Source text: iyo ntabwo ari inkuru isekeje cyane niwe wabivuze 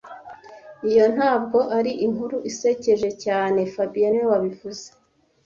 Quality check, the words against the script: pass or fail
fail